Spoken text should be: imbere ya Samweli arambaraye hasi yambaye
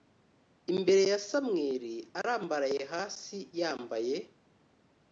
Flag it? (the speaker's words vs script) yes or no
no